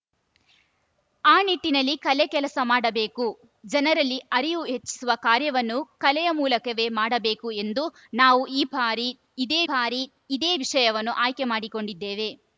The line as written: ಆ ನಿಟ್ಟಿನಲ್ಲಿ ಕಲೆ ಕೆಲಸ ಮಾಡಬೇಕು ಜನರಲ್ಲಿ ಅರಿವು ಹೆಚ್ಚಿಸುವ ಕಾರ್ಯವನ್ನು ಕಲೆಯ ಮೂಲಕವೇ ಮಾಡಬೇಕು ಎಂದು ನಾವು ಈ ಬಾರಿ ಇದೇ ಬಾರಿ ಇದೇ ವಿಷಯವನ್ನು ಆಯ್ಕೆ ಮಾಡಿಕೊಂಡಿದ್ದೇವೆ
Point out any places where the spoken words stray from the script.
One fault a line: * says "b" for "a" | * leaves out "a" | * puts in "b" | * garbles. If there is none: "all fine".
all fine